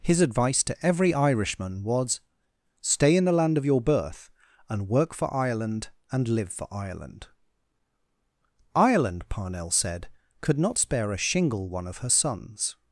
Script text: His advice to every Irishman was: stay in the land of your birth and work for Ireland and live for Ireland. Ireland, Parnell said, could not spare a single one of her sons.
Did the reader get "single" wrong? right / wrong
wrong